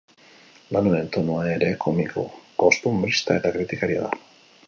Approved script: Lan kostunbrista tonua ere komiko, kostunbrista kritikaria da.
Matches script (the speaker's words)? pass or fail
fail